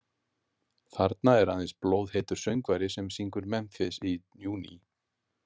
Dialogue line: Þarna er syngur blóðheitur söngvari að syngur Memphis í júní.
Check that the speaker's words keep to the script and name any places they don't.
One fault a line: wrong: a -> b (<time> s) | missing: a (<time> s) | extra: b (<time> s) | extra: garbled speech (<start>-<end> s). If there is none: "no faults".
wrong: syngur -> aðeins (1.6 s)
wrong: að -> sem (3.0 s)